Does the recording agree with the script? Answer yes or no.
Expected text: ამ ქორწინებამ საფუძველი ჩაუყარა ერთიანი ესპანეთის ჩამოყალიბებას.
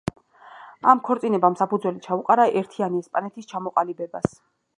yes